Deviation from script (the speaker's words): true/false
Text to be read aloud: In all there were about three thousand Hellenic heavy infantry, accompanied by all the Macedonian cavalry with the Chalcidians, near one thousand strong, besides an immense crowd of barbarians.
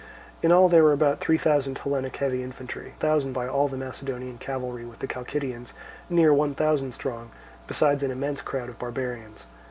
true